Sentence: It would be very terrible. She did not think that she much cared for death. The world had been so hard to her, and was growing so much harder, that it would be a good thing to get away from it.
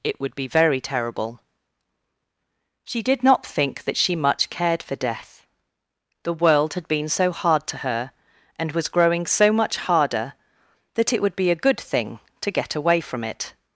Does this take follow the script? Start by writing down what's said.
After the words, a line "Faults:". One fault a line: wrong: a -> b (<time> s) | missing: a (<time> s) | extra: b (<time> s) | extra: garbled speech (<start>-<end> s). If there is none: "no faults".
It would be very terrible. She did not think that she much cared for death. The world had been so hard to her, and was growing so much harder, that it would be a good thing to get away from it.
Faults:
no faults